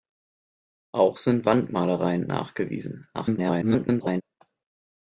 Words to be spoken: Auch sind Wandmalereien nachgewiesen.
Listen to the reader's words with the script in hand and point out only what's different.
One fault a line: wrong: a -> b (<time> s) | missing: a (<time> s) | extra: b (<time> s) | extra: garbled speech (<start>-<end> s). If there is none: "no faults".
extra: garbled speech (3.1-4.2 s)